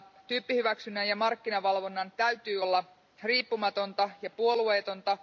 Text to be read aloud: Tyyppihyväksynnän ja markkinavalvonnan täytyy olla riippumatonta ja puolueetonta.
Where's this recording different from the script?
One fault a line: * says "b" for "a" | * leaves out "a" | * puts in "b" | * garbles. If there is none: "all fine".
all fine